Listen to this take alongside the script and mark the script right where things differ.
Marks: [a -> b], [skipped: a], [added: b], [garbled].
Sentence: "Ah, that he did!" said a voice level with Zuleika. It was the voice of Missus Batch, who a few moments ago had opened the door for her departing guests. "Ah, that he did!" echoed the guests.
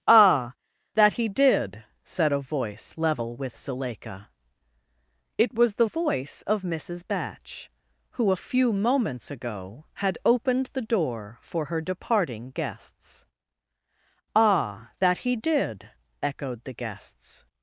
"Ah, that he did!" said a voice level with Zuleika. It was the voice of Missus Batch, who a few moments ago had opened the door for her departing guests. "Ah, that he did!" echoed the guests.